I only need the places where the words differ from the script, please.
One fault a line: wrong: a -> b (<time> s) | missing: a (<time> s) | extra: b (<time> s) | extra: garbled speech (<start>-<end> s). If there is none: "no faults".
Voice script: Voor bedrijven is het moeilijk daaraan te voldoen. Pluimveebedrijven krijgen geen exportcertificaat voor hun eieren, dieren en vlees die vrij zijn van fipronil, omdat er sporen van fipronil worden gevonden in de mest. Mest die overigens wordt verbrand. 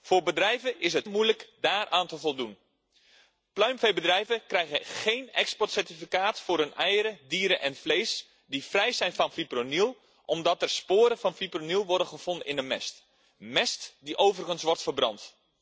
no faults